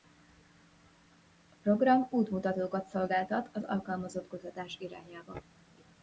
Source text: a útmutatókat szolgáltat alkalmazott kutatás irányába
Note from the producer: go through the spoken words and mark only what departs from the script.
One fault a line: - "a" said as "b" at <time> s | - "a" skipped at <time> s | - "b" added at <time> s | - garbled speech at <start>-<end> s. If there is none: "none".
- "program" added at 1.6 s
- "az" added at 3.5 s